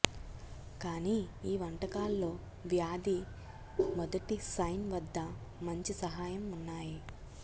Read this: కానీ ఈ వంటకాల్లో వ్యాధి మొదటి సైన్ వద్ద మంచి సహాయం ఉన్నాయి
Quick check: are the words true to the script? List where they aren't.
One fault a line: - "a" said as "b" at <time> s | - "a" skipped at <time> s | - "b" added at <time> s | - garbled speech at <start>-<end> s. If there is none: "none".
none